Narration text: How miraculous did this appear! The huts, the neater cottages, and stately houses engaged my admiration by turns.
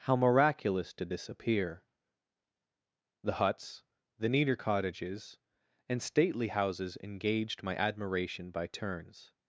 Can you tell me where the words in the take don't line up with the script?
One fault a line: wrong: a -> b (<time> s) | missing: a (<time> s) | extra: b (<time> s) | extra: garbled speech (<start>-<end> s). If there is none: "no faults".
no faults